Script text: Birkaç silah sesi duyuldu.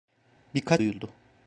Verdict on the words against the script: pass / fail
fail